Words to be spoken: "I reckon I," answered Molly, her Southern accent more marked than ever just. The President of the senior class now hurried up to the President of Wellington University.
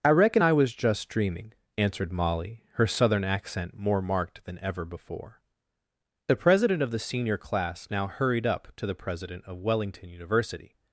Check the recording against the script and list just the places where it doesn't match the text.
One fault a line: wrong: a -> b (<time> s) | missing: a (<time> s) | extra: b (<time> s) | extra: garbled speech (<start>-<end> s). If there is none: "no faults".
extra: was just dreaming (0.5 s)
wrong: just -> before (4.8 s)